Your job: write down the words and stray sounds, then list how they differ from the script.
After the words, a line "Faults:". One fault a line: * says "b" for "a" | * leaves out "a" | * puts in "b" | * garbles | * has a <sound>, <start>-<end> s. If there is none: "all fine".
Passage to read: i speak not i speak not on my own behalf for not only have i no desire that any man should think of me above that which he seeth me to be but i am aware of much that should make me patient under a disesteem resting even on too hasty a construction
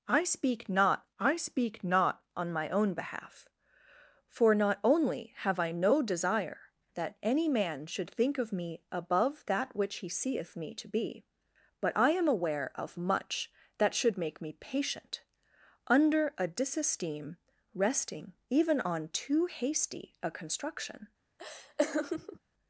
i speak not i speak not on my own behalf for not only have i no desire that any man should think of me above that which he seeth me to be but i am aware of much that should make me patient under a disesteem resting even on too hasty a construction
Faults:
* has a laugh, 21.4-22.4 s